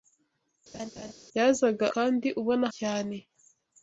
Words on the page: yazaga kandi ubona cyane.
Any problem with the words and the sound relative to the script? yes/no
yes